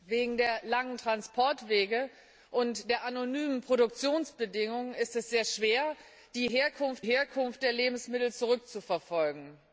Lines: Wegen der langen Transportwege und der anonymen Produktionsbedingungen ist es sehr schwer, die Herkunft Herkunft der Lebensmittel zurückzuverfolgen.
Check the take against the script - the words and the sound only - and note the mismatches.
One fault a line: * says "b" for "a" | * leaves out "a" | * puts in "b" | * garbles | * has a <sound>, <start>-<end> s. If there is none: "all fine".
all fine